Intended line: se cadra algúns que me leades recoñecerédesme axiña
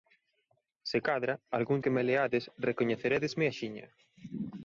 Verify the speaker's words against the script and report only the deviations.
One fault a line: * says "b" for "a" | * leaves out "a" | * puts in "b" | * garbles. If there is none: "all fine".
all fine